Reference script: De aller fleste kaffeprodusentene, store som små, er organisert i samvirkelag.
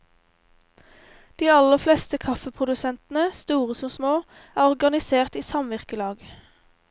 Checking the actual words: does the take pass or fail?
pass